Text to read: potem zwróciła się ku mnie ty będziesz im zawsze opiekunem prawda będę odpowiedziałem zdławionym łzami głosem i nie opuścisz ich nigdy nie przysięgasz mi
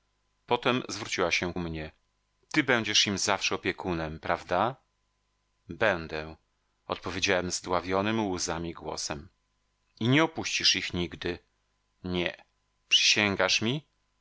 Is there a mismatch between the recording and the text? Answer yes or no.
yes